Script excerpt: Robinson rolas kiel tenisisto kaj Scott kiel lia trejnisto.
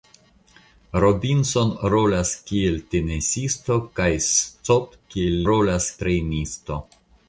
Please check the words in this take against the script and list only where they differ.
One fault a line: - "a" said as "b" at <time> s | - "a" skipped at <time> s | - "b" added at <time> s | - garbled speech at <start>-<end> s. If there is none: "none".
- "lia" said as "rolas" at 5.5 s